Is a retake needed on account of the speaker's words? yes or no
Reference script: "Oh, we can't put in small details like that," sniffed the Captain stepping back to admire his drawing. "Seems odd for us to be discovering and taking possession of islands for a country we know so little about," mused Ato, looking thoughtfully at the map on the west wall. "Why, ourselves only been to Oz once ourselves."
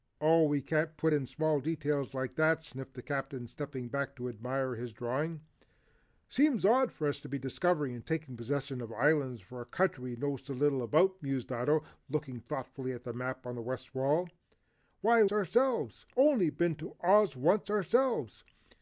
no